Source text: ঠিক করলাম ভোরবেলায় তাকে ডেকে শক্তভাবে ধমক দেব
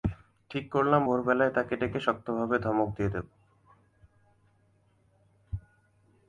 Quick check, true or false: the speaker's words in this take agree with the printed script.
false